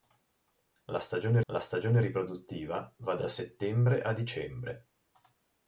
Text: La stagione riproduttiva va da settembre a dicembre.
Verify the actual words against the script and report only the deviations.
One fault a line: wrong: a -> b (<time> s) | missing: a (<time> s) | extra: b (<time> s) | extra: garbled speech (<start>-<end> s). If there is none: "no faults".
extra: la stagione (1.5 s)
extra: da (3.2 s)